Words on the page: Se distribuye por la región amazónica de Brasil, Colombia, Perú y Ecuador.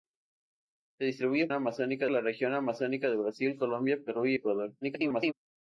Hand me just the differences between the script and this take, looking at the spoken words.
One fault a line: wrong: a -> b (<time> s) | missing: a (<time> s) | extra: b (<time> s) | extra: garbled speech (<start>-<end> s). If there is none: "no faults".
wrong: por -> amazónica (1.5 s)
extra: garbled speech (4.8-5.3 s)